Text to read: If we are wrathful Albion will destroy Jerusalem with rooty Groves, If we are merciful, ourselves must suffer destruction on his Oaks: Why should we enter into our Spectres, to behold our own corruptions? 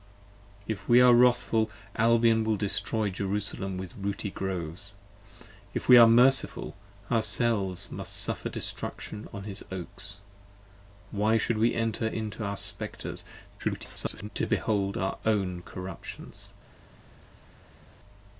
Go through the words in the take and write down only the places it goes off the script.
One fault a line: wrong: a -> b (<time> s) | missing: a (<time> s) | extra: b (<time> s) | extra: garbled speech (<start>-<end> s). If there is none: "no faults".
extra: garbled speech (13.6-14.3 s)